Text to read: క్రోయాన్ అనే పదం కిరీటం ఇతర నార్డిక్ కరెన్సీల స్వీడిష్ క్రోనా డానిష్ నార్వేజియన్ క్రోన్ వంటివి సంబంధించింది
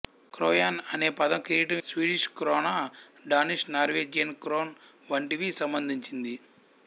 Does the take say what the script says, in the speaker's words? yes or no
no